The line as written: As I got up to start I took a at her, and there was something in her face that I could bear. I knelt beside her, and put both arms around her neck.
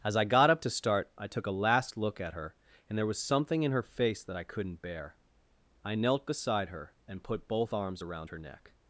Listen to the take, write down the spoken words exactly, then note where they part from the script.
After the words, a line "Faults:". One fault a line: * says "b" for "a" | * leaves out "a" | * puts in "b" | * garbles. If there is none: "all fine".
As I got up to start I took a last look at her, and there was something in her face that I couldn't bear. I knelt beside her, and put both arms around her neck.
Faults:
* puts in "last look"
* says "couldn't" for "could"